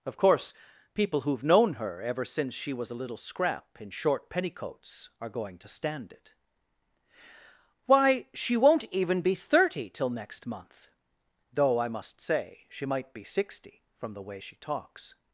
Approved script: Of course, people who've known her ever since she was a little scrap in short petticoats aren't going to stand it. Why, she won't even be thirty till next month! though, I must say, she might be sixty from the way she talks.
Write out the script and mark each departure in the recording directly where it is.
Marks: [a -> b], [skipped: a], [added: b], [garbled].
Of course, people who've known her ever since she was a little scrap in short petticoats [aren't -> are] going to stand it. Why, she won't even be thirty till next month! though, I must say, she might be sixty from the way she talks.